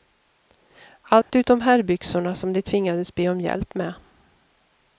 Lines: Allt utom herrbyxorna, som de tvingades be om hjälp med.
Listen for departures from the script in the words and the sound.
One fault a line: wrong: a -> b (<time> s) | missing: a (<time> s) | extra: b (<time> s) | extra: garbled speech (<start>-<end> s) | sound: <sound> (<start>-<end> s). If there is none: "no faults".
sound: dropout (1.2-1.3 s)